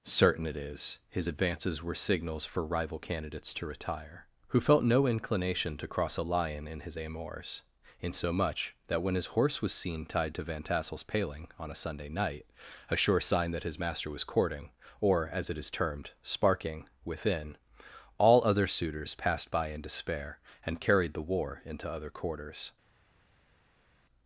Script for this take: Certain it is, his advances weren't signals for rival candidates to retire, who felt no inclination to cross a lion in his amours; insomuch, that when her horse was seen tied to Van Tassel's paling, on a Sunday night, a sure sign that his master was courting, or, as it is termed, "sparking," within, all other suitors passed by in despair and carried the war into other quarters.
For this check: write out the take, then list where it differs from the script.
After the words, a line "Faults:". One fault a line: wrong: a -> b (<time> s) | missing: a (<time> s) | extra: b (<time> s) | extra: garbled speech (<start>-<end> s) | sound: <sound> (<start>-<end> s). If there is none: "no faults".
Certain it is, his advances were signals for rival candidates to retire, who felt no inclination to cross a lion in his amours; insomuch, that when his horse was seen tied to Van Tassel's paling, on a Sunday night, a sure sign that his master was courting, or, as it is termed, "sparking," within, all other suitors passed by in despair and carried the war into other quarters.
Faults:
wrong: weren't -> were (1.8 s)
wrong: her -> his (9.1 s)